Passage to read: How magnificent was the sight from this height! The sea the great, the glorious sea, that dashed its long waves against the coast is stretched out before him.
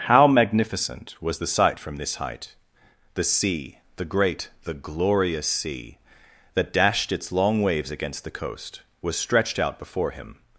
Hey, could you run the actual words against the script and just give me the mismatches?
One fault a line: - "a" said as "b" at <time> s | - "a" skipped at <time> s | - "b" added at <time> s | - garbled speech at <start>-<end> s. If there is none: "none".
- "is" said as "was" at 9.0 s